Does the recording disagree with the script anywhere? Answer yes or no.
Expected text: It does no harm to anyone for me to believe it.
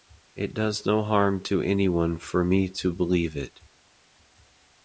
no